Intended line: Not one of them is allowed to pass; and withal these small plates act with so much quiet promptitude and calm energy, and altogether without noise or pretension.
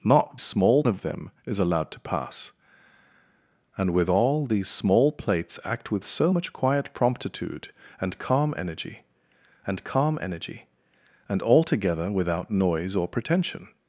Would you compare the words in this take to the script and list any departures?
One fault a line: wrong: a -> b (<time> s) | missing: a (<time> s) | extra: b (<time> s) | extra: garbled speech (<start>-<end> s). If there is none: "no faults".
wrong: one -> small (0.4 s)
extra: calm energy and (9.8 s)